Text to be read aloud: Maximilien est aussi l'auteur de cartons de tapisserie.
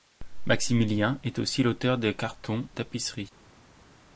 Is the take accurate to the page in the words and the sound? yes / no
no